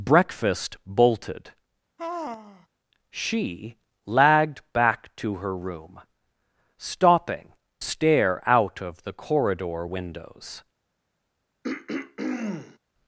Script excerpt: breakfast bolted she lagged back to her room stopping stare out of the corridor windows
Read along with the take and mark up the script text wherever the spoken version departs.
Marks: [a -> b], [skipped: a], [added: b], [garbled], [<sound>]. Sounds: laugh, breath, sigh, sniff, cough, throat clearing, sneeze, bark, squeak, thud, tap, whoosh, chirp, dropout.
breakfast bolted [sigh] she lagged back to her room stopping stare out of the corridor windows [throat clearing]